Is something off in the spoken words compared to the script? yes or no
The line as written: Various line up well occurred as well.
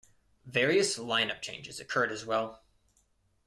yes